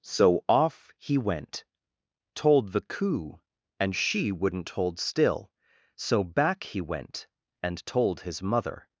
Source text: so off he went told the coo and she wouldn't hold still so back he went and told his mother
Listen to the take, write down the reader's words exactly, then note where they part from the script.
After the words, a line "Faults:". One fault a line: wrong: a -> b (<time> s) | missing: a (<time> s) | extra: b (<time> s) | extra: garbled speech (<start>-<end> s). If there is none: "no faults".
so off he went told the coo and she wouldn't hold still so back he went and told his mother
Faults:
no faults